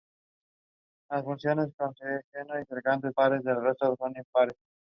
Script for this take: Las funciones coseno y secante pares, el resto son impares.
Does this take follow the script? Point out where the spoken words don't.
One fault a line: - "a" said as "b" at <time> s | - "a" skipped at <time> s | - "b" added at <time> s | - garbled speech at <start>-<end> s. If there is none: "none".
none